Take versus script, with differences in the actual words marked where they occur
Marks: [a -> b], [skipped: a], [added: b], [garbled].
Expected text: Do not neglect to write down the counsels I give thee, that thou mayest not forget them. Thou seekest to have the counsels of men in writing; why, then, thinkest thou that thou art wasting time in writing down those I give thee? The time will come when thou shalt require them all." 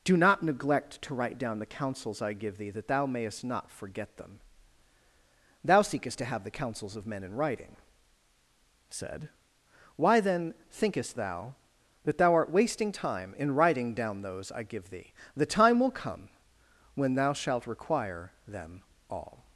Do not neglect to write down the counsels I give thee, that thou mayest not forget them. Thou seekest to have the counsels of men in writing; [added: said] why, then, thinkest thou that thou art wasting time in writing down those I give thee? The time will come when thou shalt require them all."